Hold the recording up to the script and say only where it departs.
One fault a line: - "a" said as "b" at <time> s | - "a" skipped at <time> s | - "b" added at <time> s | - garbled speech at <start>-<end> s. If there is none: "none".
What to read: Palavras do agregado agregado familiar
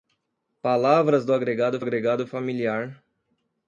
none